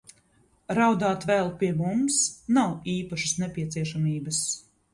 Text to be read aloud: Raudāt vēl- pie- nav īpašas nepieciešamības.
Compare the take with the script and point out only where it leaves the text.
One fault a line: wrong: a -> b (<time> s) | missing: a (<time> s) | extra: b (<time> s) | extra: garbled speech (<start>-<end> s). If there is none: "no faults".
extra: mums (1.8 s)